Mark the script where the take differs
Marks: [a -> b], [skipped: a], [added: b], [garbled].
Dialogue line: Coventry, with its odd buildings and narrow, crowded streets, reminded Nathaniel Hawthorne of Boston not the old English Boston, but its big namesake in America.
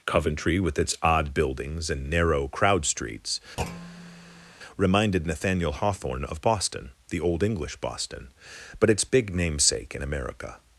Coventry, with its odd buildings and narrow, [crowded -> crowd] streets, reminded Nathaniel Hawthorne of Boston [skipped: not] the old English Boston, but its big namesake in America.